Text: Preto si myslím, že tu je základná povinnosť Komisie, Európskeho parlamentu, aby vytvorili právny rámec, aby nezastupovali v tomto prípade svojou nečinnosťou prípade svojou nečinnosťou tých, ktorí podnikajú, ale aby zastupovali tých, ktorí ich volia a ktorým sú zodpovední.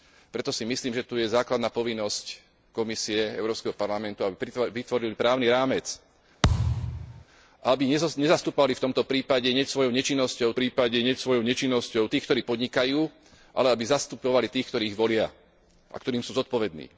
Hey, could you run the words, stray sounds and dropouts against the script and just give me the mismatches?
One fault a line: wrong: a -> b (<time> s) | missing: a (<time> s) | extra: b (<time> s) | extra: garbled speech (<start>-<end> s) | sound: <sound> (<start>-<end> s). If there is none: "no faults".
sound: thud (6.4-7.3 s)